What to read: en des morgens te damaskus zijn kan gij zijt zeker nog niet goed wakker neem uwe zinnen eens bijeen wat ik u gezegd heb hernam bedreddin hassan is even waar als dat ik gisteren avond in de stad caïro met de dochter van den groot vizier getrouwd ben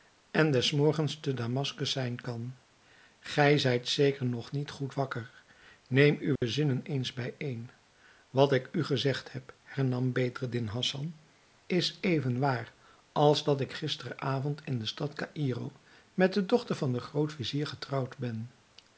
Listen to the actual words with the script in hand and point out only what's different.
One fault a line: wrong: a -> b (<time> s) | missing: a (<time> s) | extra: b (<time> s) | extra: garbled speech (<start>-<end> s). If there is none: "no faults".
no faults